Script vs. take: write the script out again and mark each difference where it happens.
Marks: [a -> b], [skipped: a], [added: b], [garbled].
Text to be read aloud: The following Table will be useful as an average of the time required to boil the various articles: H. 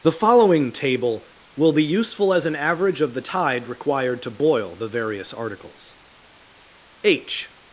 The following Table will be useful as an average of the [time -> tide] required to boil the various articles: H.